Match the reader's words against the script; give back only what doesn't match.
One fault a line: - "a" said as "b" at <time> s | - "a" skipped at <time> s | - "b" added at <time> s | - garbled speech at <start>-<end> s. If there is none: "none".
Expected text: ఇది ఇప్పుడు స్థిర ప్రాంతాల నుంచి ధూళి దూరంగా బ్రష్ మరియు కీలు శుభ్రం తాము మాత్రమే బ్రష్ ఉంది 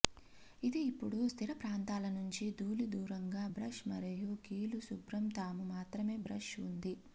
none